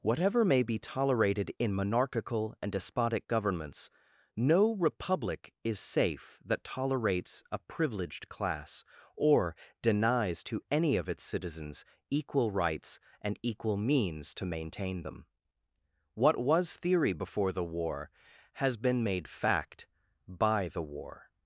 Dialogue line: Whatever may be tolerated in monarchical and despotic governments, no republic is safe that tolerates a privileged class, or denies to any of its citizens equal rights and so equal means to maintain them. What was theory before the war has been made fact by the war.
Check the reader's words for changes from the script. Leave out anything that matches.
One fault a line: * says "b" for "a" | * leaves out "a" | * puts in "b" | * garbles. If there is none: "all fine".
* leaves out "so"